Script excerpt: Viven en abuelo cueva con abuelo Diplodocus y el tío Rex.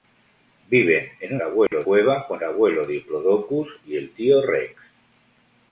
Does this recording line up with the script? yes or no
yes